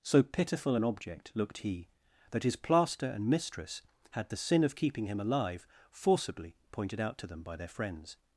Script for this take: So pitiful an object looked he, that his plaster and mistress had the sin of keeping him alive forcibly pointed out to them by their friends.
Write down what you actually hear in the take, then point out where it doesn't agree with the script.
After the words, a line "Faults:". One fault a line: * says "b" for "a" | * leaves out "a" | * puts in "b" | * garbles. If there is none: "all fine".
So pitiful an object looked he, that his plaster and mistress had the sin of keeping him alive forcibly pointed out to them by their friends.
Faults:
all fine